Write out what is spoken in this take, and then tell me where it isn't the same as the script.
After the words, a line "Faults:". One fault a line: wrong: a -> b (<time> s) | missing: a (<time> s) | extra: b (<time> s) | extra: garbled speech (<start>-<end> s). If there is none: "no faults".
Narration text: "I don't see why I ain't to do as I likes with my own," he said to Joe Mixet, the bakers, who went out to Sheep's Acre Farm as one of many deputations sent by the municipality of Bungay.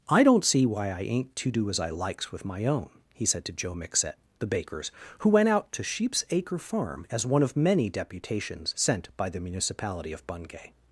"I don't see why I ain't to do as I likes with my own," he said to Joe Mixet, the bakers, who went out to Sheep's Acre Farm as one of many deputations sent by the municipality of Bungay.
Faults:
no faults